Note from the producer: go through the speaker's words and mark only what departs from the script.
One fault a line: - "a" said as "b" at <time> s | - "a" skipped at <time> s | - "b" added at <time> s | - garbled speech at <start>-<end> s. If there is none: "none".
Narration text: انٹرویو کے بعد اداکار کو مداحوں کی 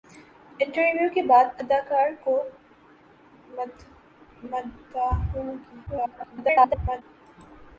- garbled speech at 5.9-7.0 s